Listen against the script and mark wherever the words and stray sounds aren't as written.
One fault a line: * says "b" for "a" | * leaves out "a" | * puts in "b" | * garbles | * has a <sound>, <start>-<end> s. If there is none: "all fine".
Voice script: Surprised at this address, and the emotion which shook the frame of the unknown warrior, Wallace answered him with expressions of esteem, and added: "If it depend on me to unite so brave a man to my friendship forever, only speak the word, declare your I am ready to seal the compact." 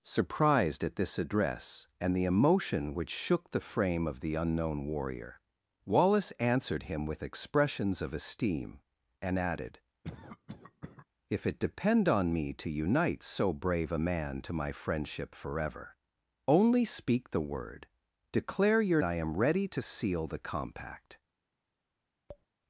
* has a cough, 10.0-11.1 s
* has a tap, 22.3-22.5 s